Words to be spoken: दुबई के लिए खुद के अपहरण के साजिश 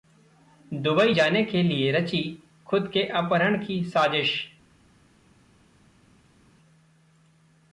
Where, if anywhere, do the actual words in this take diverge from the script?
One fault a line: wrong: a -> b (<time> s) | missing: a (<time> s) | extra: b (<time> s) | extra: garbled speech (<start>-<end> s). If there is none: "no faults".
extra: जाने (1.1 s)
extra: रची (1.9 s)
wrong: के -> की (3.7 s)